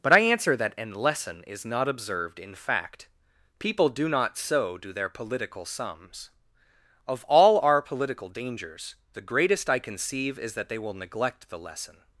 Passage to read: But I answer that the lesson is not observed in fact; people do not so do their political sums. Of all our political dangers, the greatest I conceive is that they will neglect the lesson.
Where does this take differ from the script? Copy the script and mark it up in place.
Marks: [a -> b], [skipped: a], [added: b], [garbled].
But I answer that [the -> an] lesson is not observed in fact; people do not so do their political sums. Of all our political dangers, the greatest I conceive is that they will neglect the lesson.